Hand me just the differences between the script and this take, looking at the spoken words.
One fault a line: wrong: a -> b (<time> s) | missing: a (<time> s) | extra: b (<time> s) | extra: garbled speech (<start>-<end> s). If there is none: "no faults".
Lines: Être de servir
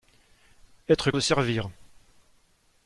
no faults